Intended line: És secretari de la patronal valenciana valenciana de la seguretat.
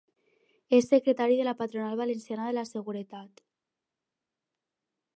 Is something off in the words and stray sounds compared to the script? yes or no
yes